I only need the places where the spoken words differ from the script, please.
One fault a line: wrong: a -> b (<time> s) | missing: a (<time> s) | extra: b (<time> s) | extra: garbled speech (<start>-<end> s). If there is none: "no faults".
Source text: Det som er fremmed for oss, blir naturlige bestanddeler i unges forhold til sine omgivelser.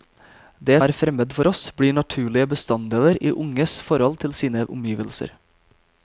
missing: som (0.8 s)